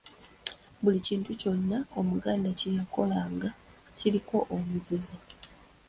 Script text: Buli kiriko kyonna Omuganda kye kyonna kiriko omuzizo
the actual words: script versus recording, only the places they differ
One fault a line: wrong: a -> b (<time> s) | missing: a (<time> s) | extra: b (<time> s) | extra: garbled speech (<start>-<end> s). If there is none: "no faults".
wrong: kiriko -> kintu (1.1 s)
wrong: kyonna -> yakolanga (2.8 s)